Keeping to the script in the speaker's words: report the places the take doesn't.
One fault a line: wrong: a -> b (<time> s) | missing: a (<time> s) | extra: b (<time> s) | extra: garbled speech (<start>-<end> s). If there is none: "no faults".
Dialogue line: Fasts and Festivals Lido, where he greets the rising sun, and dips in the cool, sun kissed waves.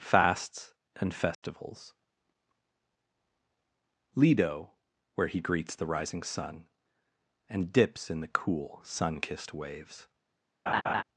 no faults